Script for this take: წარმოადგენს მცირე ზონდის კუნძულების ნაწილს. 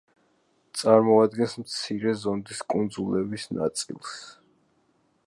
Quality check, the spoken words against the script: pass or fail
pass